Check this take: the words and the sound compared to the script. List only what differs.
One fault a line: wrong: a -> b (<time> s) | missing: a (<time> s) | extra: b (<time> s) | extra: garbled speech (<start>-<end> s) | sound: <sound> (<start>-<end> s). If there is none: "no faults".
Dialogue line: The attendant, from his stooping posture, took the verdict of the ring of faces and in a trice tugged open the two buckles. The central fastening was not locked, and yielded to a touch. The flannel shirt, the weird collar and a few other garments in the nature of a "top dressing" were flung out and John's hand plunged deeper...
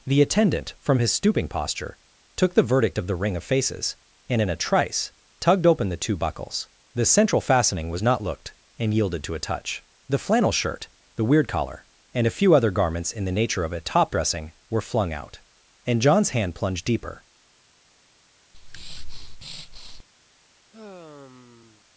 wrong: locked -> looked (8.2 s)
sound: breath (18.5-20.0 s)
sound: sigh (20.7-21.8 s)